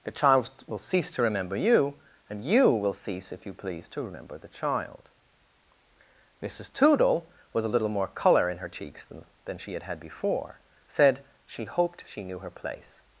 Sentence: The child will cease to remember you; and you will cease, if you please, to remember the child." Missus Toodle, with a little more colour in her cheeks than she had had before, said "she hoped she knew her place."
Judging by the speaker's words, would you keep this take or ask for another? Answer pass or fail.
fail